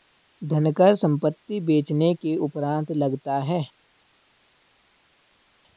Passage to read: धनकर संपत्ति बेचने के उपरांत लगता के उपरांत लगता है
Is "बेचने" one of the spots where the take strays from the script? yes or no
no